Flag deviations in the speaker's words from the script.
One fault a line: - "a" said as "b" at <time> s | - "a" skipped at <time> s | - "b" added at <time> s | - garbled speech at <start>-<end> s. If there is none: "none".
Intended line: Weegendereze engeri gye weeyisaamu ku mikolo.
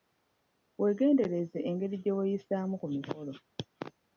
none